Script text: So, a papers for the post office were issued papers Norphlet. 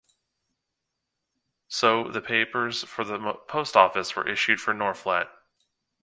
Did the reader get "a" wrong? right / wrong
wrong